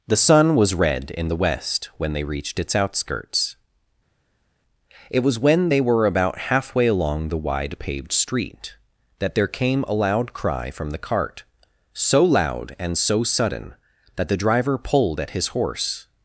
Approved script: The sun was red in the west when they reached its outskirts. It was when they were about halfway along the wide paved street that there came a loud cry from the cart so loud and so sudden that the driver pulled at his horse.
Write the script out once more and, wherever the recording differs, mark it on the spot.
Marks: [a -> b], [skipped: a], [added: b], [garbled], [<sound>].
The sun was red in the west when they reached its outskirts. It was when they were about halfway along the wide paved street that there came a loud cry from the cart so loud and so sudden that the driver pulled at his horse.